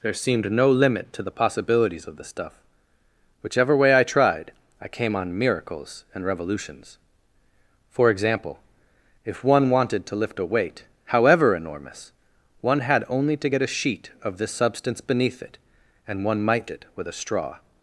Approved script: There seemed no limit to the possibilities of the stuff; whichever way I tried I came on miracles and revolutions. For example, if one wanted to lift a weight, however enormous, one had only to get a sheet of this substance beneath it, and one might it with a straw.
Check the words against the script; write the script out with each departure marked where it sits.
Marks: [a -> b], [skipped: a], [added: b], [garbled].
There seemed no limit to the possibilities of the stuff; whichever way I tried I came on miracles and revolutions. For example, if one wanted to lift a weight, however enormous, one had only to get a sheet of this substance beneath it, and one might it with a straw.